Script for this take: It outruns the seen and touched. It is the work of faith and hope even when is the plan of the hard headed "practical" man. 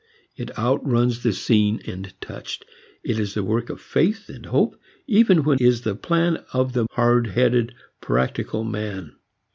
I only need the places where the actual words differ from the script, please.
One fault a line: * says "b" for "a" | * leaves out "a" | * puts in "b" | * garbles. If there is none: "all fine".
all fine